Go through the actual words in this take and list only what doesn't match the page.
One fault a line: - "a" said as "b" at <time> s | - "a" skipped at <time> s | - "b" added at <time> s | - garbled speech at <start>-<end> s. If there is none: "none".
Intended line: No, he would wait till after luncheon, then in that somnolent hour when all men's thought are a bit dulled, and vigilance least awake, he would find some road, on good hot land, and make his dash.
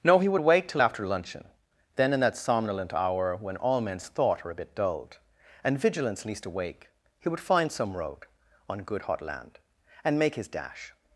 none